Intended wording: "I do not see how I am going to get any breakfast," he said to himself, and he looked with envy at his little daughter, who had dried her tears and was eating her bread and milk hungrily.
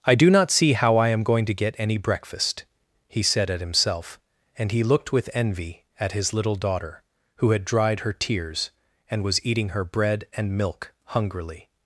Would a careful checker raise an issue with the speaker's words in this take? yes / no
yes